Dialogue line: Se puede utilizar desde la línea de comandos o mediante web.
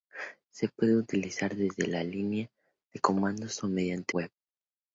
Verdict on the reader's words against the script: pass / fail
pass